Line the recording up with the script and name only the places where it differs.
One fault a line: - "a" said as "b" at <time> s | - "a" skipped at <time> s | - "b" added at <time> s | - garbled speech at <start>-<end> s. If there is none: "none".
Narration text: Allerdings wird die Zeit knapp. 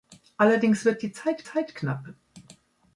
- "Zeit" added at 1.4 s